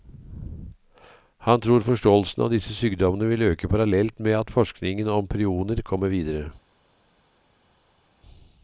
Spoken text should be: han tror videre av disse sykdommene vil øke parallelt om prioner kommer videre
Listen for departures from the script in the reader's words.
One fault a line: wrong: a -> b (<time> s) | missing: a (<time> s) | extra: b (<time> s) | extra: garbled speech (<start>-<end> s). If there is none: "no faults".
wrong: videre -> forståelsen (1.9 s)
extra: med at forskningen (4.2 s)